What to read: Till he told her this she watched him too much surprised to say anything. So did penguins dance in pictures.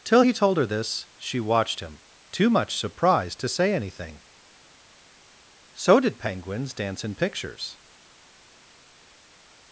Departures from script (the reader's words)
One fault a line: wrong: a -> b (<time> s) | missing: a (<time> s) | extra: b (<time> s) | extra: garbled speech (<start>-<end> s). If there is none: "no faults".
no faults